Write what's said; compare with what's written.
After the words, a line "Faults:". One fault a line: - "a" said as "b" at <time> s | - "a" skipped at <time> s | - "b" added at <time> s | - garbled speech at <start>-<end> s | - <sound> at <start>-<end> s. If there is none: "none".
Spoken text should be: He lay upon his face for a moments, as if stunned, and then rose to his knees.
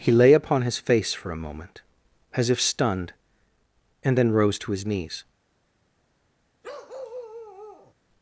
He lay upon his face for a moment, as if stunned, and then rose to his knees.
Faults:
- "moments" said as "moment" at 1.4 s
- bark at 6.6-7.9 s